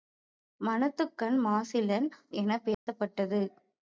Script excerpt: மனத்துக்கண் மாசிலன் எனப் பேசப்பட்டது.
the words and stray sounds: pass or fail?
fail